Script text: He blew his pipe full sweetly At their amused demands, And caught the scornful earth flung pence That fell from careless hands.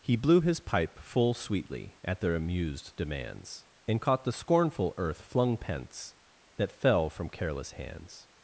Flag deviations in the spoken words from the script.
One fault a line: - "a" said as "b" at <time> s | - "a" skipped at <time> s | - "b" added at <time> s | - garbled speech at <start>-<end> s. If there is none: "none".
none